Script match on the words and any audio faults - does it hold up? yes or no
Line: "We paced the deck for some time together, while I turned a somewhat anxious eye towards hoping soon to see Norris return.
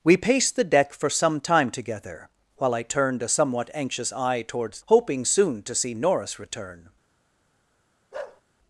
no